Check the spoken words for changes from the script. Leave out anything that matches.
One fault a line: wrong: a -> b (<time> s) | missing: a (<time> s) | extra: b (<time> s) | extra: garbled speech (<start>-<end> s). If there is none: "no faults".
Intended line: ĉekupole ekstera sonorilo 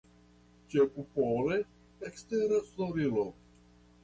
no faults